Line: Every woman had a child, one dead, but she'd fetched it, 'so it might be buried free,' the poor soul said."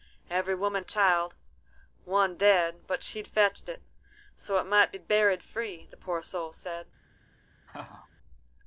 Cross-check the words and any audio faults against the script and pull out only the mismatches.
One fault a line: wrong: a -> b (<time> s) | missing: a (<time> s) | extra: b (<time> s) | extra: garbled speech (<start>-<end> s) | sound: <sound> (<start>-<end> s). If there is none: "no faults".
missing: had (0.8 s)
sound: laugh (7.7-8.1 s)